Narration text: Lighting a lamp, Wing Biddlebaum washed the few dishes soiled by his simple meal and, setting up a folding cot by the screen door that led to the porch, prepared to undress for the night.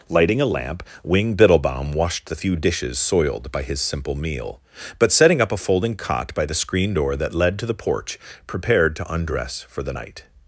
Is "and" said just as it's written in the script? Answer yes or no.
no